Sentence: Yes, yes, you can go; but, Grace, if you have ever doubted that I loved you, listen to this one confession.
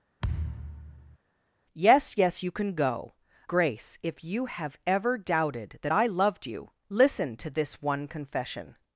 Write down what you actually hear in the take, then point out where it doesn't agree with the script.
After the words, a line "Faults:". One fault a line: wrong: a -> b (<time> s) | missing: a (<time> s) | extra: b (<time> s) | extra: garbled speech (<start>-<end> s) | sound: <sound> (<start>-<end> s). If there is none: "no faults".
Yes, yes, you can go; Grace, if you have ever doubted that I loved you, listen to this one confession.
Faults:
sound: thud (0.2-1.2 s)
missing: but (3.1 s)